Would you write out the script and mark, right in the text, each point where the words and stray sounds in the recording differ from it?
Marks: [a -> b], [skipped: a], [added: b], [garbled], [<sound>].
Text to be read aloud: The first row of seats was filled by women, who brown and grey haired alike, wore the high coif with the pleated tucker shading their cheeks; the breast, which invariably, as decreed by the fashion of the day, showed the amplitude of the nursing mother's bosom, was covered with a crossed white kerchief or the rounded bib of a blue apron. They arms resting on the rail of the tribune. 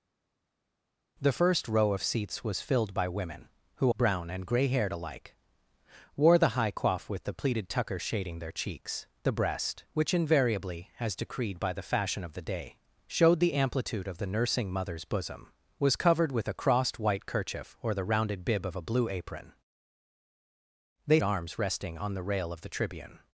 The first row of seats was filled by women, who brown and grey haired alike, wore the high coif with the pleated tucker shading their cheeks; the breast, which invariably, as decreed by the fashion of the day, showed the amplitude of the nursing mother's bosom, was covered with a crossed white kerchief or the rounded bib of a blue apron. They arms resting on the rail of the tribune.